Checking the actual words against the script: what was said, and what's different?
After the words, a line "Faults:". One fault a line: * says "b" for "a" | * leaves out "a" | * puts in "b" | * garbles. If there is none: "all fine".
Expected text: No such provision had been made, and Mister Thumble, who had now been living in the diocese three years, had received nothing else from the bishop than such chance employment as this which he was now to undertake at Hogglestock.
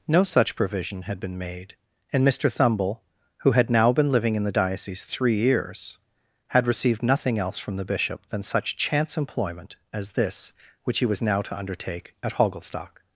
No such provision had been made, and Mister Thumble, who had now been living in the diocese three years, had received nothing else from the bishop than such chance employment as this which he was now to undertake at Hogglestock.
Faults:
all fine